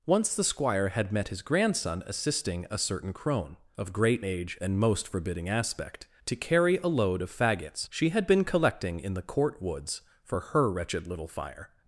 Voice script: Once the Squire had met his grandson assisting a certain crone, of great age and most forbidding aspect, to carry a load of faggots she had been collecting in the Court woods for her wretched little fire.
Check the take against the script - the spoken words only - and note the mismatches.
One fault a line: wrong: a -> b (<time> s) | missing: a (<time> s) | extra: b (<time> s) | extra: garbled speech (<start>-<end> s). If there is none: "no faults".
no faults